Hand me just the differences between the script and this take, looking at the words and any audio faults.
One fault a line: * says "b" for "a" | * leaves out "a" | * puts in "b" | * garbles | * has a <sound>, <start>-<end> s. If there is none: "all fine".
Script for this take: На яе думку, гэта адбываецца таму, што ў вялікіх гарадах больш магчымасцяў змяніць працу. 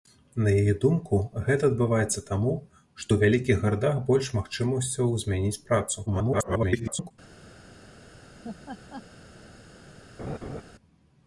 * garbles
* has a laugh, 8.4-9.0 s
* has a laugh, 10.2-10.6 s